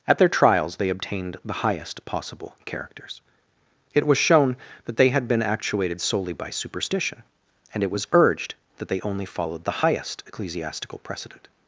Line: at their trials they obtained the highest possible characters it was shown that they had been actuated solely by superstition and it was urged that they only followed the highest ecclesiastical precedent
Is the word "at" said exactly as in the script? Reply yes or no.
yes